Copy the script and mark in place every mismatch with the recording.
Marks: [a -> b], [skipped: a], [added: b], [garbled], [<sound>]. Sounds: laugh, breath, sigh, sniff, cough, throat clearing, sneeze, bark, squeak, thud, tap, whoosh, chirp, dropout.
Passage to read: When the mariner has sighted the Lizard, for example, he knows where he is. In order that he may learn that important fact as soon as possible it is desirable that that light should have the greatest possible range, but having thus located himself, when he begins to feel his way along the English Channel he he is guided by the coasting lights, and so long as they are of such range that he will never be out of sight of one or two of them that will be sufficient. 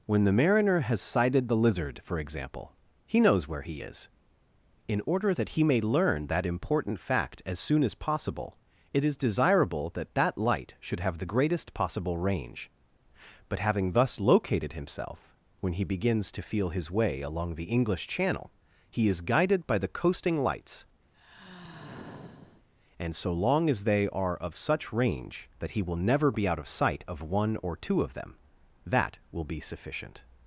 When the mariner has sighted the Lizard, for example, he knows where he is. In order that he may learn that important fact as soon as possible it is desirable that that light should have the greatest possible range, but having thus located himself, when he begins to feel his way along the English Channel he [skipped: he] is guided by the coasting lights, [sigh] and so long as they are of such range that he will never be out of sight of one or two of them that will be sufficient.